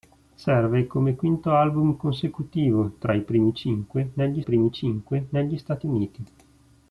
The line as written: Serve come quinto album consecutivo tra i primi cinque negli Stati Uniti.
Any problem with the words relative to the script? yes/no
yes